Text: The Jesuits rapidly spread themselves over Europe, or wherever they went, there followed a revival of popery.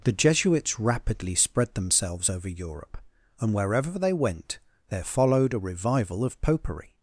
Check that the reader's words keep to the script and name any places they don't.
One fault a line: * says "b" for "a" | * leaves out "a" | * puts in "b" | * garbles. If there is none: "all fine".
* says "and" for "or"